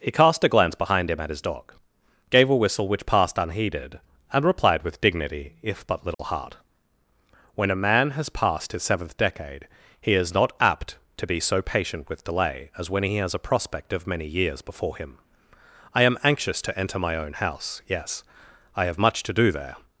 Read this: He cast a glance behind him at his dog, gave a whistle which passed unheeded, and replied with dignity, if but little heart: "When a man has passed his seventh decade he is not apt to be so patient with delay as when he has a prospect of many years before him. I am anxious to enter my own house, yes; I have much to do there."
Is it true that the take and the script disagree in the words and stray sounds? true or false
true